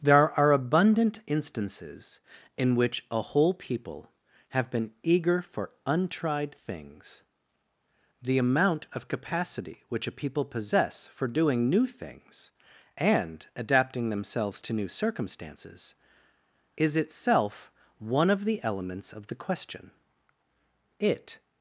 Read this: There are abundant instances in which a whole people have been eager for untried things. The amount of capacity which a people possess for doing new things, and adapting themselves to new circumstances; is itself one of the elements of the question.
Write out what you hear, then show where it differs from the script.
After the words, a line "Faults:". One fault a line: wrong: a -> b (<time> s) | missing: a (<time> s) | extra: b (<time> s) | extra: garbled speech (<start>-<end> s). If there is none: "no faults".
There are abundant instances in which a whole people have been eager for untried things. The amount of capacity which a people possess for doing new things, and adapting themselves to new circumstances; is itself one of the elements of the question. It
Faults:
extra: It (21.0 s)